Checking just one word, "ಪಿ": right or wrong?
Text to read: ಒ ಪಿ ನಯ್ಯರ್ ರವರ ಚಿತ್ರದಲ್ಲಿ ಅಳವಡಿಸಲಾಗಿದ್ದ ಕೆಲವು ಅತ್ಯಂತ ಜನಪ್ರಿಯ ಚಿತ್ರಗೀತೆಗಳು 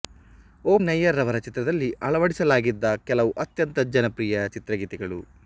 wrong